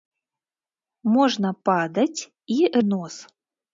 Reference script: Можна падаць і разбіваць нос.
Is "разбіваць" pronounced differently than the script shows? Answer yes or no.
yes